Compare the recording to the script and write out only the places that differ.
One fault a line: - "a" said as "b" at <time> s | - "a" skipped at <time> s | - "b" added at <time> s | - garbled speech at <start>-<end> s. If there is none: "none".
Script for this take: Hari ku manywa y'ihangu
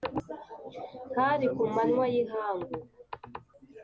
none